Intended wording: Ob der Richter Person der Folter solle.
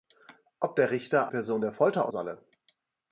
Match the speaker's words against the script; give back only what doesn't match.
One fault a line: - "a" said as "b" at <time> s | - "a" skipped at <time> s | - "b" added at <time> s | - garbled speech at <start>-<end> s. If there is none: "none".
none